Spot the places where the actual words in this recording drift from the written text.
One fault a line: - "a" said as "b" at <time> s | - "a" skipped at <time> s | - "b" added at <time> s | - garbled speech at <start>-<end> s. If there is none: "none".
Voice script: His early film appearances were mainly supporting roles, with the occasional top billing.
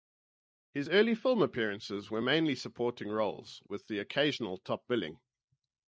none